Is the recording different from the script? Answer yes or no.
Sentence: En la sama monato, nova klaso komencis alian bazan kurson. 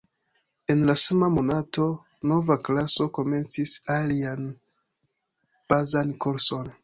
no